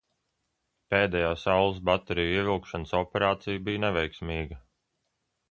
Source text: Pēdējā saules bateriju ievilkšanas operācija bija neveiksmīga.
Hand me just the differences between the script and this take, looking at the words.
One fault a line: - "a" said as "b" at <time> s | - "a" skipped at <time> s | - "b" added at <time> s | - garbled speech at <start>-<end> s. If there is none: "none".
none